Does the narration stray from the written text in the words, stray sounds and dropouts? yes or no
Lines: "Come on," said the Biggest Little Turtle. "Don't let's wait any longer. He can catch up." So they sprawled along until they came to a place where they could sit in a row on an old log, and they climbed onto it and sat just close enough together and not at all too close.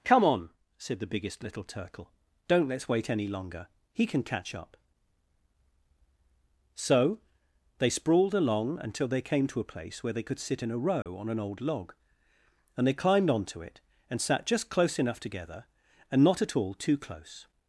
yes